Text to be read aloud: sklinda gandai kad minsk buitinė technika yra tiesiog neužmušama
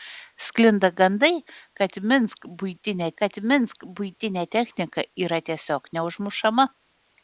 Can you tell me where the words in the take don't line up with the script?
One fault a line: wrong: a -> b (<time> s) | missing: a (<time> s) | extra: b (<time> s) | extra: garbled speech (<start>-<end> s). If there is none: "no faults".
extra: kad minsk buitinė (3.2 s)